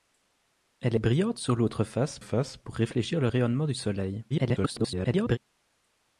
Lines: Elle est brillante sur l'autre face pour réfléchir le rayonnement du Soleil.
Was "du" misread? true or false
false